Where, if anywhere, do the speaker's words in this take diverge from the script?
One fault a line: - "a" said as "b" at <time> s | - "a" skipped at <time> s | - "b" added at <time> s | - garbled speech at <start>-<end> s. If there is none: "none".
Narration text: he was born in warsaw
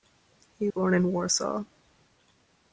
- "was" skipped at 0.7 s